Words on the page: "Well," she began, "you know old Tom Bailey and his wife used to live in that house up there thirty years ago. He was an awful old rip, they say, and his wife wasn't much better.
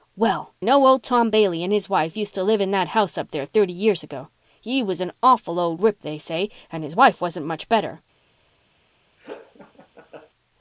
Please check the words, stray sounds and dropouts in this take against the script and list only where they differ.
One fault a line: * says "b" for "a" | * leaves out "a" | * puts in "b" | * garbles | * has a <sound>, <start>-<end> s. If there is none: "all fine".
* leaves out "she began you"
* has a laugh, 9.2-10.3 s